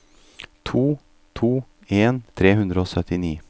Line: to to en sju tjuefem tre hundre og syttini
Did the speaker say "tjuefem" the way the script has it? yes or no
no